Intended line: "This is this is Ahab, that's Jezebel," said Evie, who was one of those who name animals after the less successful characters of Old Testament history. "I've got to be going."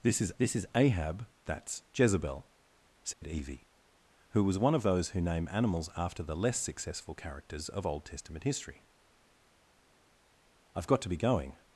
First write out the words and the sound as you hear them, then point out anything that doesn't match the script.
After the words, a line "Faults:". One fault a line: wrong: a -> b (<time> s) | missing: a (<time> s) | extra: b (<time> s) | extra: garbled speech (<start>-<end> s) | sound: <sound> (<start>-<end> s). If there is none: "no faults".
"This is this is Ahab, that's Jezebel," said Evie, who was one of those who name animals after the less successful characters of Old Testament history. "I've got to be going."
Faults:
sound: dropout (3.1-3.2 s)